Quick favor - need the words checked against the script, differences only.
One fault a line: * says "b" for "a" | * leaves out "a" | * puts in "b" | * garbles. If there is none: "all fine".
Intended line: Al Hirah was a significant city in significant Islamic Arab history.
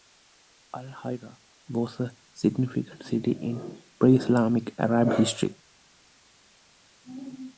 * says "pre" for "significant"